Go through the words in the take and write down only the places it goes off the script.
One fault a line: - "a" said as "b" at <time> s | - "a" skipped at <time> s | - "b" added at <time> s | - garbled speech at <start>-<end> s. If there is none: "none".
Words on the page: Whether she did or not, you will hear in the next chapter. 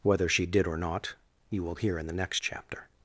none